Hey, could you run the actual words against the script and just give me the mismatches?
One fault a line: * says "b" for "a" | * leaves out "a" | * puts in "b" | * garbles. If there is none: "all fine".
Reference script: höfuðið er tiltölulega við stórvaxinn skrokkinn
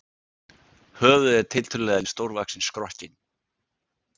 all fine